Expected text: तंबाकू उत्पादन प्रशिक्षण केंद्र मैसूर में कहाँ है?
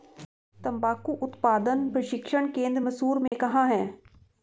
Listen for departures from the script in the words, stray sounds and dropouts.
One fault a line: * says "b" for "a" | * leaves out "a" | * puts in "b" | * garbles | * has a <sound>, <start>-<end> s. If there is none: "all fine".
* has a dropout, 3.3-3.3 s